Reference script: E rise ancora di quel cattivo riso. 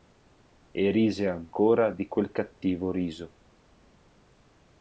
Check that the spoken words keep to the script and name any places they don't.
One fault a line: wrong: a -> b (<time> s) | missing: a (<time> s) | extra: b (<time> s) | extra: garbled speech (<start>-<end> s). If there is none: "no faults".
no faults